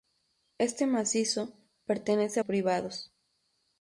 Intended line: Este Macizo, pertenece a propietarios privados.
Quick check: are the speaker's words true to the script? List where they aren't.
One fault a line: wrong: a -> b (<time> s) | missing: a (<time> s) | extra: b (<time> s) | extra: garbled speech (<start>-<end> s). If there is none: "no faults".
missing: a propietarios (2.4 s)